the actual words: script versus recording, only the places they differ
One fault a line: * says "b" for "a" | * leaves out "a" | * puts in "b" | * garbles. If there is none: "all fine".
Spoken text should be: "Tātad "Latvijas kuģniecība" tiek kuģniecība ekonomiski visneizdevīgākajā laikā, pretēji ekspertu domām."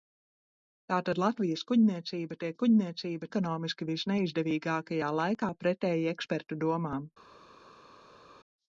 all fine